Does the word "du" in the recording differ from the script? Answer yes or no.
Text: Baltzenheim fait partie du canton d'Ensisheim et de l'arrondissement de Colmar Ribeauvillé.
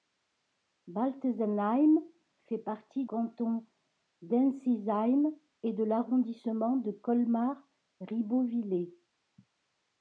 yes